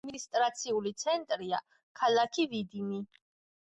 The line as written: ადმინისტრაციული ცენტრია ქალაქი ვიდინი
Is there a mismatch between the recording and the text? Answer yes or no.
no